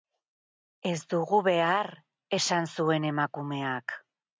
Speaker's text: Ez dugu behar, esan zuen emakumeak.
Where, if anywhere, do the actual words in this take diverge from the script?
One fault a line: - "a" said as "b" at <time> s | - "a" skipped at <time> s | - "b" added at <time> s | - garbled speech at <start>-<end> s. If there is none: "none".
none